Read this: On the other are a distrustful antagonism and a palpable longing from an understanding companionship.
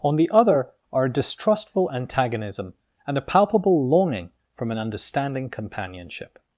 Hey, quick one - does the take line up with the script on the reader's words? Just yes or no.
yes